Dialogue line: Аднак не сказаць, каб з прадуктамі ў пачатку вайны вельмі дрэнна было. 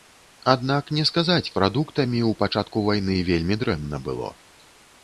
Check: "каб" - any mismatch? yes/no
yes